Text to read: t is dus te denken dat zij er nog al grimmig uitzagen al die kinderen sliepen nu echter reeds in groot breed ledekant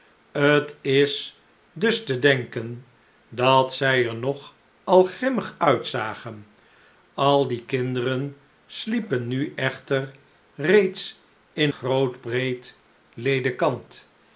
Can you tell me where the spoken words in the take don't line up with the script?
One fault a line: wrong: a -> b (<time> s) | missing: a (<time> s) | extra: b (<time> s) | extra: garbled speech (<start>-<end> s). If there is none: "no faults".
no faults